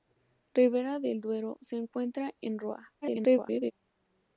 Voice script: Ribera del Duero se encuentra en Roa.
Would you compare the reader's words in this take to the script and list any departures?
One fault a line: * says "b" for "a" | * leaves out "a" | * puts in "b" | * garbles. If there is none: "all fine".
* garbles